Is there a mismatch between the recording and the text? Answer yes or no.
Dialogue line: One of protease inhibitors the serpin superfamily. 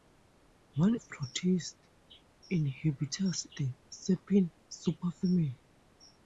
no